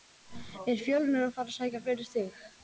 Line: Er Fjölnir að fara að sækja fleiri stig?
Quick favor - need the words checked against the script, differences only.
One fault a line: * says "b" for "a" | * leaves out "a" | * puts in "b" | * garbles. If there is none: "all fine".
all fine